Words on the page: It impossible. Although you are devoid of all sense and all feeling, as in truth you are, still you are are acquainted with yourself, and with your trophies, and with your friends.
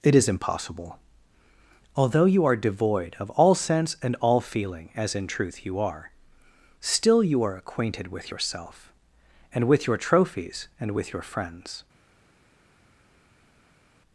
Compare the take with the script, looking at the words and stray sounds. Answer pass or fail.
fail